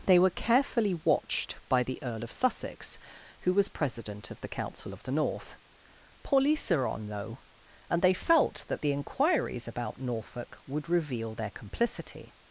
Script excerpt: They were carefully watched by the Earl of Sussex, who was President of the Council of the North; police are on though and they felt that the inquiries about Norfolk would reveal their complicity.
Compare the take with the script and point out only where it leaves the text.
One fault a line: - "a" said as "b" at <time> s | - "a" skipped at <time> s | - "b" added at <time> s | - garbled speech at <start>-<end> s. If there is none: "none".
none